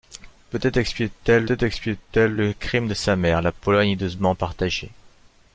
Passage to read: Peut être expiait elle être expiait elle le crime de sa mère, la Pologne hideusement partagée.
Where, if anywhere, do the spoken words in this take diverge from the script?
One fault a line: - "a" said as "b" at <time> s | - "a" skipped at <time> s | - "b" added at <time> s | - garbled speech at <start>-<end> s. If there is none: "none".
none